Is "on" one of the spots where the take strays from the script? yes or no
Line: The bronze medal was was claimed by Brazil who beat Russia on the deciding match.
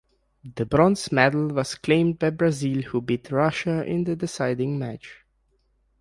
yes